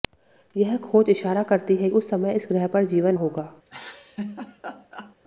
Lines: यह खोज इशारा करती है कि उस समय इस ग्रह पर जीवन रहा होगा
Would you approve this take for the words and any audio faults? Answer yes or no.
no